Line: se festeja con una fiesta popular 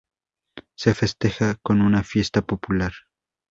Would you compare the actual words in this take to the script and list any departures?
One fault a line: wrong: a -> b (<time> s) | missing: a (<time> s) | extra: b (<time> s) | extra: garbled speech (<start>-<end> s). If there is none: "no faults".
no faults